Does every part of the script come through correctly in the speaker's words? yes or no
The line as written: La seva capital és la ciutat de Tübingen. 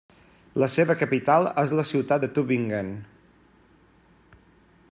yes